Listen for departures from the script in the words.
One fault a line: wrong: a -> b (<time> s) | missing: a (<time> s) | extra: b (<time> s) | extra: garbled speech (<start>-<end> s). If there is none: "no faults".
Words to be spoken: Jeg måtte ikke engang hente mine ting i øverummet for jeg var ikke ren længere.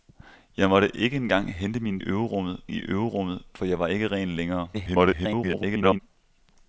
wrong: ting -> øverummet (2.0 s)
extra: garbled speech (4.7-6.0 s)